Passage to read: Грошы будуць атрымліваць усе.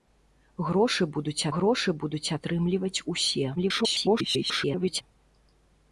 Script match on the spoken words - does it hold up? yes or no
no